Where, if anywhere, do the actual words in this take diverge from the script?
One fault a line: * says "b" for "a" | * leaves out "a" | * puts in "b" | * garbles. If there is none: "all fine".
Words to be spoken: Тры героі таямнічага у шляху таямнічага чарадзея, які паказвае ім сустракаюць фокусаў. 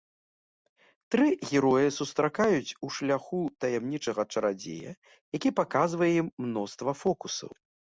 * says "сустракаюць" for "таямнічага"
* says "мноства" for "сустракаюць"